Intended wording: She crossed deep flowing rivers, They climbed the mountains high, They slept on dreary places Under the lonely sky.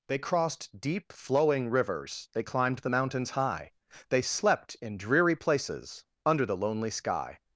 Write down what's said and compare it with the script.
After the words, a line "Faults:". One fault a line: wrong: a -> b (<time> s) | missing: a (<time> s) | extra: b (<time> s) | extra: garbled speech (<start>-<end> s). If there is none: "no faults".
They crossed deep flowing rivers, They climbed the mountains high, They slept in dreary places Under the lonely sky.
Faults:
wrong: She -> They (0.1 s)
wrong: on -> in (4.8 s)